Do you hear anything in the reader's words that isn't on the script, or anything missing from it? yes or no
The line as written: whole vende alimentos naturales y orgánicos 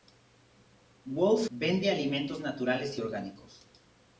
no